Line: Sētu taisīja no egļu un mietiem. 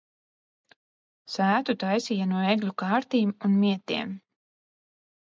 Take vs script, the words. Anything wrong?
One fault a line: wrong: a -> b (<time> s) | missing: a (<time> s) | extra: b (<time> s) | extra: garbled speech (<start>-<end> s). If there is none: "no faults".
extra: kārtīm (2.8 s)